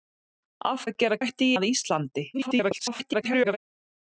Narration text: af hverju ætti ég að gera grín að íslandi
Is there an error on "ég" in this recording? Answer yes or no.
yes